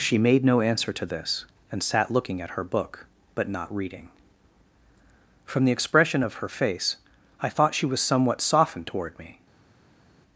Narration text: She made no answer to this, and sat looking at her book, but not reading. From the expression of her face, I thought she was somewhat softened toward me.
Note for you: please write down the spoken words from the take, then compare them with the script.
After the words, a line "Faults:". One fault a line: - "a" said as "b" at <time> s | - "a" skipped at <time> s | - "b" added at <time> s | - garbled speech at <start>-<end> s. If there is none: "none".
She made no answer to this, and sat looking at her book, but not reading. From the expression of her face, I thought she was somewhat softened toward me.
Faults:
none